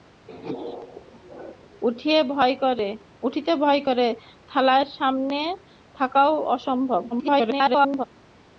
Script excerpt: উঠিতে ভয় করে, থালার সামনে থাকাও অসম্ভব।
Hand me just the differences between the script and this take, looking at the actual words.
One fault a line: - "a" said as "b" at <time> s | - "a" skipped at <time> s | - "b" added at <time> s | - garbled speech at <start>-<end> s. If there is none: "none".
- garbled speech at 7.1-8.0 s